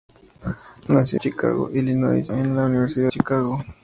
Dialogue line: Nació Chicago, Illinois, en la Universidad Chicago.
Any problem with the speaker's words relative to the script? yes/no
no